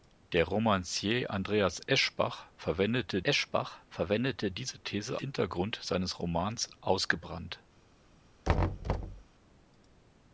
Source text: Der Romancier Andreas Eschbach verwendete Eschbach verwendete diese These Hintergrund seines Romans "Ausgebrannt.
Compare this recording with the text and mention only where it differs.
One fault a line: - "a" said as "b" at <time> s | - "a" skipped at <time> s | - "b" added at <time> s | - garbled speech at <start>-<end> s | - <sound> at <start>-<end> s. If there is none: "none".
- thud at 8.4-9.2 s